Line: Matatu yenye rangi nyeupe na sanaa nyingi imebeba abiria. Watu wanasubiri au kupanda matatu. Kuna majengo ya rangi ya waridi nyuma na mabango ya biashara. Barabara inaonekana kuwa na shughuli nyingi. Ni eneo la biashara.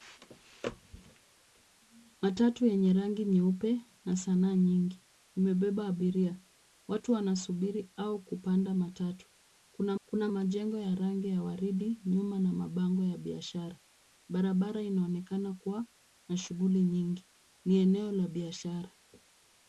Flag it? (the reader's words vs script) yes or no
yes